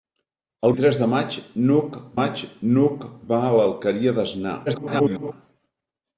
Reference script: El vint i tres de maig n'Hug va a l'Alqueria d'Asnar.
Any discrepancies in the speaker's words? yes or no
yes